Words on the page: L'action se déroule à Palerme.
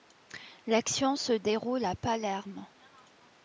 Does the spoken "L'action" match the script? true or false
true